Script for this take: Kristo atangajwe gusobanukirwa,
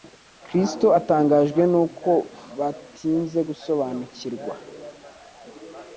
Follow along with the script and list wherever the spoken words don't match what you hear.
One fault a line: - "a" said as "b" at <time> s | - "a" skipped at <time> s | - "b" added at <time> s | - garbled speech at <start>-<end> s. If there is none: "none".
- "n'uko batinze" added at 1.7 s